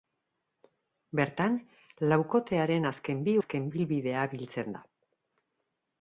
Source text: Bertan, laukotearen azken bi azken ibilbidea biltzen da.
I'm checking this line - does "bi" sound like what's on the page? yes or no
yes